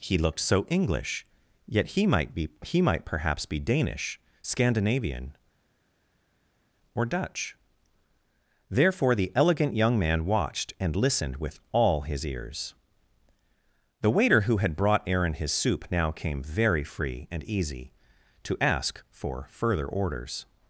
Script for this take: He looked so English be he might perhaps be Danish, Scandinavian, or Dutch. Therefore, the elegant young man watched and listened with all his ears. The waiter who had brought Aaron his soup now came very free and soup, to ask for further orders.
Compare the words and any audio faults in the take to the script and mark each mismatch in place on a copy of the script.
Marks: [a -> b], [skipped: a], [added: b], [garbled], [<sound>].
He looked so English [added: yet he might] be he might perhaps be Danish, Scandinavian, or Dutch. Therefore, the elegant young man watched and listened with all his ears. The waiter who had brought Aaron his soup now came very free and [soup, -> easy] to ask for further orders.